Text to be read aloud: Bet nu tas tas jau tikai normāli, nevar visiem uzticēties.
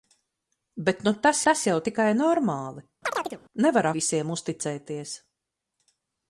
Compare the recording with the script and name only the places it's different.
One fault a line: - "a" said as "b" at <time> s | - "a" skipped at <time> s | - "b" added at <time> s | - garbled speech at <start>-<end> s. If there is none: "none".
none